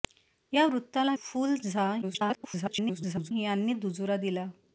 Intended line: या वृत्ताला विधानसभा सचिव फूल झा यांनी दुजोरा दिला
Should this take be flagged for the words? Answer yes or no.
yes